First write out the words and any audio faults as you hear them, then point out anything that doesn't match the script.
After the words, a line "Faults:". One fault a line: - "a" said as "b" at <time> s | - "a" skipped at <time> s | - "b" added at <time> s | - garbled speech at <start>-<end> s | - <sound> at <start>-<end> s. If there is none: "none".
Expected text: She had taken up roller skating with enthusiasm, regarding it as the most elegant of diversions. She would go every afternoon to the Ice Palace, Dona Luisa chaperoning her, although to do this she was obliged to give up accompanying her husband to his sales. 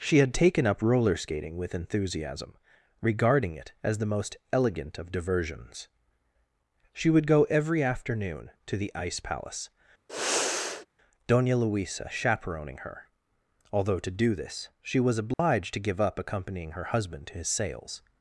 She had taken up roller skating with enthusiasm, regarding it as the most elegant of diversions. She would go every afternoon to the Ice Palace, Dona Luisa chaperoning her, although to do this she was obliged to give up accompanying her husband to his sales.
Faults:
- sigh at 10.1-10.9 s
- dropout at 15.3-15.4 s